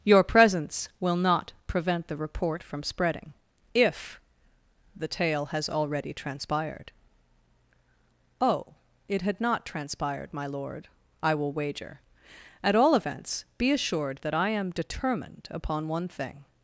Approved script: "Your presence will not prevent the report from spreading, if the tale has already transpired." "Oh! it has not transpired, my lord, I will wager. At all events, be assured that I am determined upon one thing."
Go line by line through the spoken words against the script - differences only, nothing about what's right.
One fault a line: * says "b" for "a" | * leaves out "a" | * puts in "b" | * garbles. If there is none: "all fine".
* says "had" for "has"